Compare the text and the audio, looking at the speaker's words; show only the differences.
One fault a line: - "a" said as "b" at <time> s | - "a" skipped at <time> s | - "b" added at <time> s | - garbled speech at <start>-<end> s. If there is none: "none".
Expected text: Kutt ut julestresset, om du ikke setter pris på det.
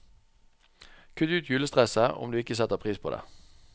none